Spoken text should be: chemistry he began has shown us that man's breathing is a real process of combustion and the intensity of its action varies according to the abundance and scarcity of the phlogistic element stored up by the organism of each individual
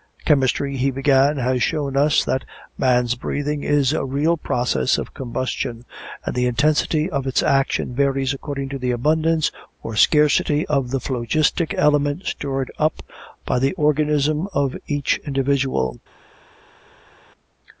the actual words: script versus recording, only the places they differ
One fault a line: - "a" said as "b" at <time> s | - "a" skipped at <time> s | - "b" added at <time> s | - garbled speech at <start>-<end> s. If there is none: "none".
- "and" said as "or" at 9.8 s